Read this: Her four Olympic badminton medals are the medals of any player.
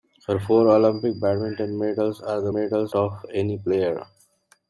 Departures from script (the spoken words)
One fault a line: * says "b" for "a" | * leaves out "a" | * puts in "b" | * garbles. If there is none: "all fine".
all fine